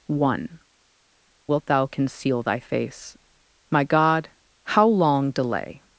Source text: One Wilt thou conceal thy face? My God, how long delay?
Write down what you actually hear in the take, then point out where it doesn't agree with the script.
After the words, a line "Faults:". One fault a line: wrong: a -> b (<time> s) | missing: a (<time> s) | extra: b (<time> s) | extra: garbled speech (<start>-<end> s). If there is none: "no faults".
One Wilt thou conceal thy face? My God, how long delay?
Faults:
no faults